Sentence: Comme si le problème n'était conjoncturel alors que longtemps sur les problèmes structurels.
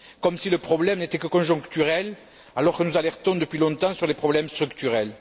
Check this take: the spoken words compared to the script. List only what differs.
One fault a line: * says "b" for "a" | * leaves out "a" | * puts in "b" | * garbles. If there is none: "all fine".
* puts in "que"
* puts in "nous alertons depuis"